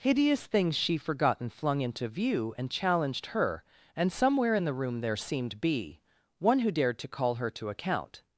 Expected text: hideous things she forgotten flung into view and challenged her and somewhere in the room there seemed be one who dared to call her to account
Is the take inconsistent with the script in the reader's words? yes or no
no